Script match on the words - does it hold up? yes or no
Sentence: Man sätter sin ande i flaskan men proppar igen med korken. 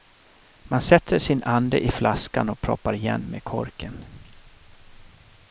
no